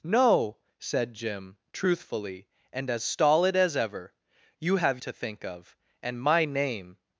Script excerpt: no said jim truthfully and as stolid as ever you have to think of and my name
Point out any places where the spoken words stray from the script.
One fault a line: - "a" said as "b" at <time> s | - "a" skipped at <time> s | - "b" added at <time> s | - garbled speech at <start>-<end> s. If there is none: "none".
none